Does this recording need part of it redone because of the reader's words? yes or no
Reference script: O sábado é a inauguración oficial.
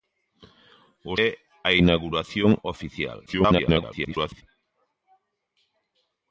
yes